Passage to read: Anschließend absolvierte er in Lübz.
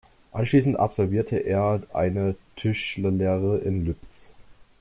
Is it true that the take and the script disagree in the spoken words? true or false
true